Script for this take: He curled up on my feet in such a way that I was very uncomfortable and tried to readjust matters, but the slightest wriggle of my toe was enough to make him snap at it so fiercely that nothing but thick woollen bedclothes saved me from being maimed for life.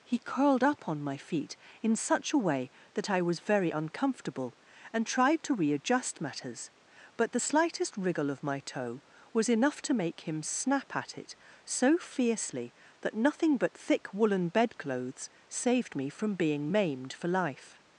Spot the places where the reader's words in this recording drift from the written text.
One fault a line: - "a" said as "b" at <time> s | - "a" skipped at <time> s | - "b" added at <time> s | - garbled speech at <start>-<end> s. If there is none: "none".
none